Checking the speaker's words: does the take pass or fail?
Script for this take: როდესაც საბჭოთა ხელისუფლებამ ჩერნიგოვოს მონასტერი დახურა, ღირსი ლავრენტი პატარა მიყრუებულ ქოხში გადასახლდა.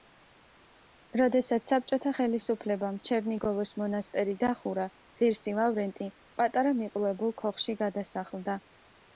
pass